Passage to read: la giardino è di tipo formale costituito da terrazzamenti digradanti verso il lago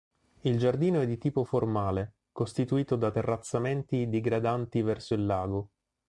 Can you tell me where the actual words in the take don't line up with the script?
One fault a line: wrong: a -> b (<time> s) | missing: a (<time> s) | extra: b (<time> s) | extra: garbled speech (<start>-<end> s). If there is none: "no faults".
wrong: la -> il (0.4 s)